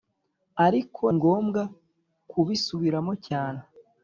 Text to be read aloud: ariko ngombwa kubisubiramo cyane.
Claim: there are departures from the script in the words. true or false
false